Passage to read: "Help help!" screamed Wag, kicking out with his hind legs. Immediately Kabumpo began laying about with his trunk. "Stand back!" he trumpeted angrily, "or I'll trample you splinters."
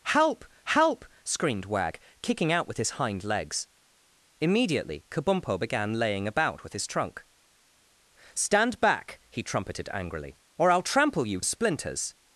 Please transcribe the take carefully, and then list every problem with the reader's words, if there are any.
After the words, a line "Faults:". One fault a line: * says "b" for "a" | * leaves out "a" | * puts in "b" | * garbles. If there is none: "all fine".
"Help help!" screamed Wag, kicking out with his hind legs. Immediately Kabumpo began laying about with his trunk. "Stand back!" he trumpeted angrily, "or I'll trample you splinters."
Faults:
all fine